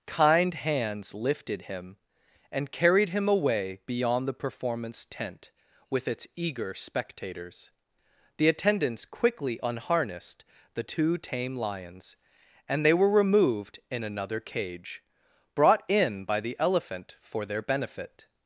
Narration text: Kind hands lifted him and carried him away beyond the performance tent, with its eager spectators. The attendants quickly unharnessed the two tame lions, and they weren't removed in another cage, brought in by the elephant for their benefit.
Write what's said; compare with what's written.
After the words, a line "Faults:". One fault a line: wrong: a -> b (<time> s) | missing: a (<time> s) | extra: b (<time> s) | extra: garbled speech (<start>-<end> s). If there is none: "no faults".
Kind hands lifted him and carried him away beyond the performance tent, with its eager spectators. The attendants quickly unharnessed the two tame lions, and they were removed in another cage, brought in by the elephant for their benefit.
Faults:
wrong: weren't -> were (12.9 s)